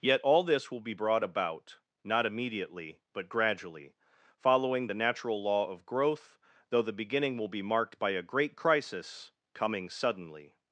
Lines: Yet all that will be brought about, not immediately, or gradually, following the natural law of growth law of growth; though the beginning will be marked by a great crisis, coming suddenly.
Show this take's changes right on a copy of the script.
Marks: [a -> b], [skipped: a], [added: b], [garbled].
Yet all [that -> this] will be brought about, not immediately, [or -> but] gradually, following the natural law of growth [skipped: law of growth;] though the beginning will be marked by a great crisis, coming suddenly.